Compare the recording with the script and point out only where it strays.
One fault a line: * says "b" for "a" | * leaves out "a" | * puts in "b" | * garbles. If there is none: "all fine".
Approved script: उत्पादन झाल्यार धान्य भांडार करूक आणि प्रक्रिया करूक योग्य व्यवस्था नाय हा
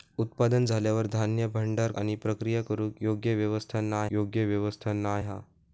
* leaves out "करूक"
* puts in "योग्य व्यवस्था नाय"